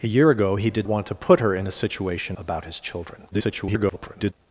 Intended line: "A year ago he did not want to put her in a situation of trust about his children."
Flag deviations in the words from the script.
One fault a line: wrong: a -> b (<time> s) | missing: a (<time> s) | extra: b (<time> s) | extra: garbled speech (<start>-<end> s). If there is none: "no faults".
missing: not (0.9 s)
missing: of trust (2.4 s)
extra: garbled speech (3.3-4.3 s)